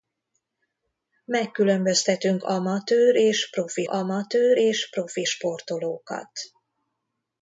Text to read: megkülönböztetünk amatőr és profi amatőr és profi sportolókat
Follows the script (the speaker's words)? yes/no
yes